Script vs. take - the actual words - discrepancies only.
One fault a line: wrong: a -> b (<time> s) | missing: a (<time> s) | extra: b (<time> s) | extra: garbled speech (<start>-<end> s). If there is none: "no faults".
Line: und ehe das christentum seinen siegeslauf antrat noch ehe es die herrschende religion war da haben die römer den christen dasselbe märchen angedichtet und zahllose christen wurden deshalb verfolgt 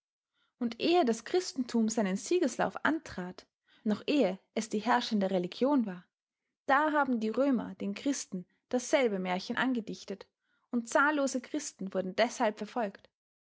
no faults